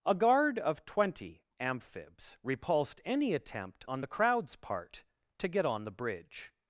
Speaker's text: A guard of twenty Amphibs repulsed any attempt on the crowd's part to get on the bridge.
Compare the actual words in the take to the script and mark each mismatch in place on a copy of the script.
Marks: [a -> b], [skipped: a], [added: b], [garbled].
A guard of twenty Amphibs repulsed any attempt on the crowd's part to get on the bridge.